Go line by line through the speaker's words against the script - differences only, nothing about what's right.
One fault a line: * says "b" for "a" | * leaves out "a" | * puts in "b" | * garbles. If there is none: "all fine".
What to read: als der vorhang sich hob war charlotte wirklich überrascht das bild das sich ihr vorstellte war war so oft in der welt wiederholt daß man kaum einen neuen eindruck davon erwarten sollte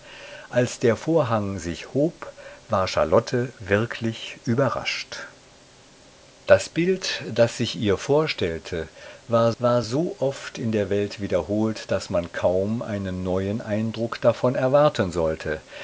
all fine